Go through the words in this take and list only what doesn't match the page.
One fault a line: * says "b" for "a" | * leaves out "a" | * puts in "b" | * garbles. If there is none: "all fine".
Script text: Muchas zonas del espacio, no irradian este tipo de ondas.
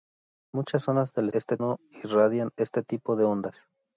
* says "este" for "espacio"